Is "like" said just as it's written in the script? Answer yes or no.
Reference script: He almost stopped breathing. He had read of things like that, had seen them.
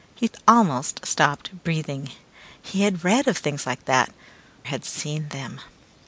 yes